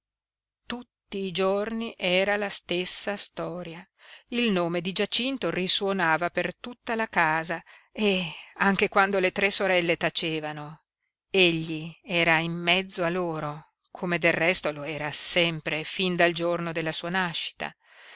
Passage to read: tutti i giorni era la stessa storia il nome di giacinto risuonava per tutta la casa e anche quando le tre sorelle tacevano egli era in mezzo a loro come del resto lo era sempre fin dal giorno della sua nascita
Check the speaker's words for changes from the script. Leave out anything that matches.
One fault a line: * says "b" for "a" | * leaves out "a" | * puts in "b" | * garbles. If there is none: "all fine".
all fine